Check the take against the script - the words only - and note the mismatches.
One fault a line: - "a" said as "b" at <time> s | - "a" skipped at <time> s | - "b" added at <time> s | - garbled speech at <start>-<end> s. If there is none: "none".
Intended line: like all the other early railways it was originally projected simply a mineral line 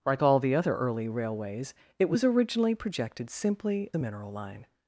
none